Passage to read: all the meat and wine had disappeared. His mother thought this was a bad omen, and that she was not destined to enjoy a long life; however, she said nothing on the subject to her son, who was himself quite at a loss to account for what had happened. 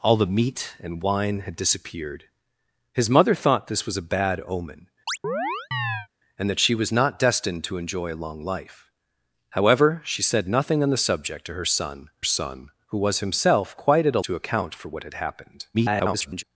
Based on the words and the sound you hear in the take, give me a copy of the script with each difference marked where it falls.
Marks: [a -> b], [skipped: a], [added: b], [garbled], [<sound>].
all the meat and wine had disappeared. His mother thought this was a bad omen, [chirp] and that she was not destined to enjoy a long life; however, she said nothing on the subject to her son, [added: son] who was himself quite at a [skipped: loss] to account for what had happened. [garbled]